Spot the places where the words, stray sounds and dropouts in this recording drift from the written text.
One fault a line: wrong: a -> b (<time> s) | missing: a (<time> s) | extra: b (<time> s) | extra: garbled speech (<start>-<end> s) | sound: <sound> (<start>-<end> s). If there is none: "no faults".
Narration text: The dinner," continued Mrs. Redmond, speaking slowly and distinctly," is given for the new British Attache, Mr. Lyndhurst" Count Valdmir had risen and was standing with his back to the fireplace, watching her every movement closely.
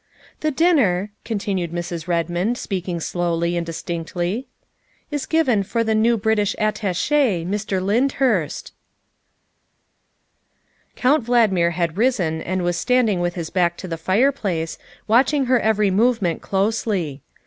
no faults